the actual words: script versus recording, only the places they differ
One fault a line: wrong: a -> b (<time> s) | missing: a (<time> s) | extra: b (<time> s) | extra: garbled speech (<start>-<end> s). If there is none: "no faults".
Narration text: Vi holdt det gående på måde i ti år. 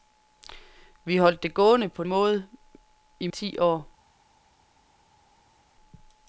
no faults